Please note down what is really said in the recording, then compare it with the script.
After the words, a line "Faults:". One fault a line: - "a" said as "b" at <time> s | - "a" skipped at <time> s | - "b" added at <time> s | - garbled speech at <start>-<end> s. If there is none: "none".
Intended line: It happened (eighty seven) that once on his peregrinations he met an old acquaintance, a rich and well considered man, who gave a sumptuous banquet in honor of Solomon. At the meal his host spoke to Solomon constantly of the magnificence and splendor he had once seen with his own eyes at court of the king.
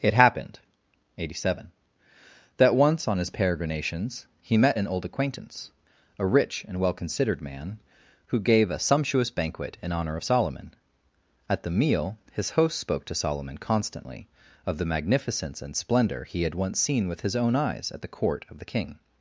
It happened (eighty seven) that once on his peregrinations he met an old acquaintance, a rich and well considered man, who gave a sumptuous banquet in honor of Solomon. At the meal his host spoke to Solomon constantly of the magnificence and splendor he had once seen with his own eyes at the court of the king.
Faults:
- "the" added at 18.0 s